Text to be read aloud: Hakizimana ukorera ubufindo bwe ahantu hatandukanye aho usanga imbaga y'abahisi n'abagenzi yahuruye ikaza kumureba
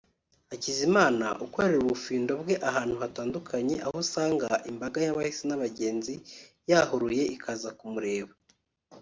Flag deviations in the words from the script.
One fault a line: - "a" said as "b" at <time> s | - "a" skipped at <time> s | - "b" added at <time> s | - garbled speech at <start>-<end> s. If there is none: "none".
none